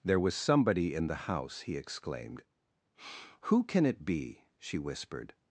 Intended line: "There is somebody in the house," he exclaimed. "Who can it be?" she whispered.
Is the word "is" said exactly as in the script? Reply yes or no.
no